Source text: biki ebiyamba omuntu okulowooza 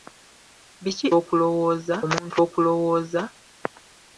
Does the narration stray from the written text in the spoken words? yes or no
yes